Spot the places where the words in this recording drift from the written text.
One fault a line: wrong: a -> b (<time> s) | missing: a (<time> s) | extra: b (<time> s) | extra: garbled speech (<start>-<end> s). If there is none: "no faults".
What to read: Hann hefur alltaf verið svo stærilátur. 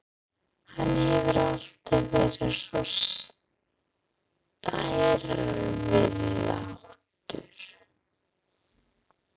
no faults